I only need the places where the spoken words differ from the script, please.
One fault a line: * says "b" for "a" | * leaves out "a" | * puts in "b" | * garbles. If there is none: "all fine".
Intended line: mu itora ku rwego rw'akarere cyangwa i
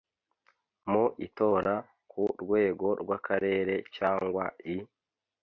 all fine